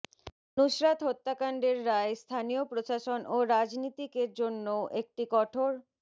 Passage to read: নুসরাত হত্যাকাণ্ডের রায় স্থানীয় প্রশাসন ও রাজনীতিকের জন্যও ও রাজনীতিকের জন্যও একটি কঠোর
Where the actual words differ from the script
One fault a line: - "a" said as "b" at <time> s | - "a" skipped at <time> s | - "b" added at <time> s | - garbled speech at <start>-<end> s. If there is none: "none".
- "ও রাজনীতিকের জন্যও" skipped at 4.8 s